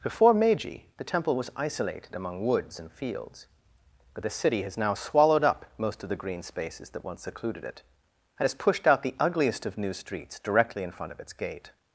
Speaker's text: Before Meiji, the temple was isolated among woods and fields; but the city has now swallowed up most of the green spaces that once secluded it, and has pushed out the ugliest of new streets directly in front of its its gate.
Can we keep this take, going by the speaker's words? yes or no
no